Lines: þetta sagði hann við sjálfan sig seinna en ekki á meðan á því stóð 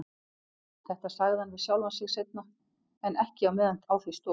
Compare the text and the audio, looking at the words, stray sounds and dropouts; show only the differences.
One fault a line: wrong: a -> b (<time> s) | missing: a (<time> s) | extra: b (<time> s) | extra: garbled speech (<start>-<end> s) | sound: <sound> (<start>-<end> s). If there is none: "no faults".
no faults